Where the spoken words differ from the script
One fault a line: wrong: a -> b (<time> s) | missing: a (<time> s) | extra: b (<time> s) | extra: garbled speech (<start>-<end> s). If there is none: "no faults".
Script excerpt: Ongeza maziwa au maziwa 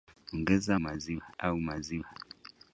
no faults